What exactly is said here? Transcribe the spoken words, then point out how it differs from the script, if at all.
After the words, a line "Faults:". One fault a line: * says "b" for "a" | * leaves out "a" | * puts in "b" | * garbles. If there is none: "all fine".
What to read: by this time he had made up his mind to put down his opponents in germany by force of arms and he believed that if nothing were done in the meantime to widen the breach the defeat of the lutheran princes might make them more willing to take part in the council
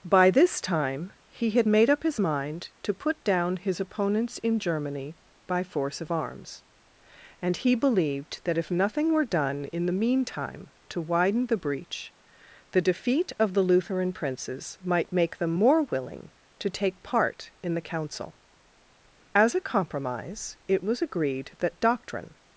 by this time he had made up his mind to put down his opponents in germany by force of arms and he believed that if nothing were done in the meantime to widen the breach the defeat of the lutheran princes might make them more willing to take part in the council as a compromise it was agreed that doctrine
Faults:
* puts in "as a compromise it was agreed that doctrine"